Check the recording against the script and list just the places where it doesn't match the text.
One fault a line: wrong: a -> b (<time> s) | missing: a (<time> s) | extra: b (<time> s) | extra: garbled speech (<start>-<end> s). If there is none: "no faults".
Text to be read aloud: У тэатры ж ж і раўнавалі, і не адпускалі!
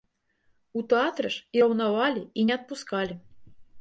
missing: ж (1.6 s)